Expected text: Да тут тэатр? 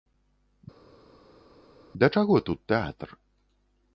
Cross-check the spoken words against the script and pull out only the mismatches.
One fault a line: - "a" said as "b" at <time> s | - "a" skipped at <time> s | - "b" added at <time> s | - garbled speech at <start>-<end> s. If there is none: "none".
- "чаго" added at 2.1 s